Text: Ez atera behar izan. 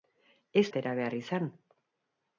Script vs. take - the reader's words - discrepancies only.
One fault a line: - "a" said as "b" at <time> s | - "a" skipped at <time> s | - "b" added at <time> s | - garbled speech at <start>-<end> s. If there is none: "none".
none